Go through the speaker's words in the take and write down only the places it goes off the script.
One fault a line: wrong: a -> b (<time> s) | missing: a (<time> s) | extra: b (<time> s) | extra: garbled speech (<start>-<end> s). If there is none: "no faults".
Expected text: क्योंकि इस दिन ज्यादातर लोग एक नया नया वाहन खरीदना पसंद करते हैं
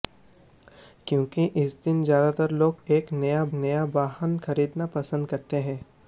no faults